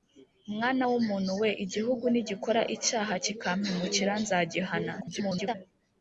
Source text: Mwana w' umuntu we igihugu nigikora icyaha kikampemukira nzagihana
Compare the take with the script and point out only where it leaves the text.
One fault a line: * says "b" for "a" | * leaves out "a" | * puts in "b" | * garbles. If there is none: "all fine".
* garbles